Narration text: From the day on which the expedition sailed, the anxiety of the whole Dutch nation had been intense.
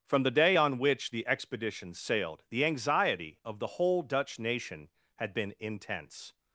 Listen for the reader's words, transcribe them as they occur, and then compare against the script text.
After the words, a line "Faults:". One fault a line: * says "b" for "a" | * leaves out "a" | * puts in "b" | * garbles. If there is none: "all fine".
From the day on which the expedition sailed, the anxiety of the whole Dutch nation had been intense.
Faults:
all fine